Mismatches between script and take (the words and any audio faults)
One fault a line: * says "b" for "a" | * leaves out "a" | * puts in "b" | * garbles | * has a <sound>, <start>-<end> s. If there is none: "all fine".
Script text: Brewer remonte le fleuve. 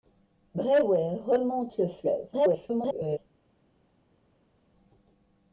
* garbles